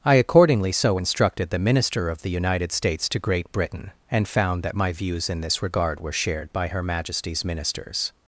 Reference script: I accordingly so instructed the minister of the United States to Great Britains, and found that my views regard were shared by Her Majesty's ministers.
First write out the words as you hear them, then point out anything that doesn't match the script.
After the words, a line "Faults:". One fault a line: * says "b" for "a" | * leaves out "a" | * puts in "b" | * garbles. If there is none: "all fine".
I accordingly so instructed the minister of the United States to Great Britain, and found that my views in this regard were shared by Her Majesty's ministers.
Faults:
* says "Britain" for "Britains"
* puts in "in this"